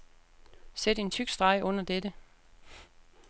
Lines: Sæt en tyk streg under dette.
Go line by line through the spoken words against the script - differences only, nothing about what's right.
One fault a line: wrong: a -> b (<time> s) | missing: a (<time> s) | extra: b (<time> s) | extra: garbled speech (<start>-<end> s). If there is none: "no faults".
no faults